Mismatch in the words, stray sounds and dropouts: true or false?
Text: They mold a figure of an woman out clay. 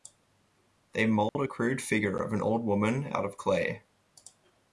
true